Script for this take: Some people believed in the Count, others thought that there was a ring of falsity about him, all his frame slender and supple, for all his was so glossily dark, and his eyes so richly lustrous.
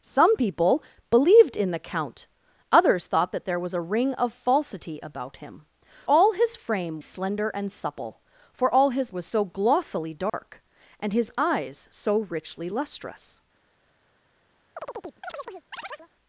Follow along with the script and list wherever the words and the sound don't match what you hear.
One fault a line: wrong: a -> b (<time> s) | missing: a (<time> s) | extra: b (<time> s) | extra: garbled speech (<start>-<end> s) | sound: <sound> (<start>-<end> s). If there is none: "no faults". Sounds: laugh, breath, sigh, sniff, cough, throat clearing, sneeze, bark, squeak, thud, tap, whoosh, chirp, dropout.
sound: dropout (10.3-10.3 s)
sound: chirp (14.8-16.1 s)